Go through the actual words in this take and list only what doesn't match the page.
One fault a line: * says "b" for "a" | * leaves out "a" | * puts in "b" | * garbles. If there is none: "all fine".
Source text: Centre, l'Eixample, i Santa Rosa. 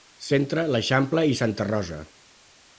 all fine